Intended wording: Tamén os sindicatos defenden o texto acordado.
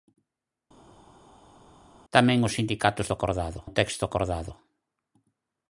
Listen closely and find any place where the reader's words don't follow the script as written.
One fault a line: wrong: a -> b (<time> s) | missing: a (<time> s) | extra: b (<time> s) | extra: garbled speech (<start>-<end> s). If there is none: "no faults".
wrong: defenden -> acordado (3.1 s)